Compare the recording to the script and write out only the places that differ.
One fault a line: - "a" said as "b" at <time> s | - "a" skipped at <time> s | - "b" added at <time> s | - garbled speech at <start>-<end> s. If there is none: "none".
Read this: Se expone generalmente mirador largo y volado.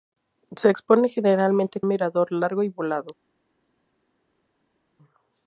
none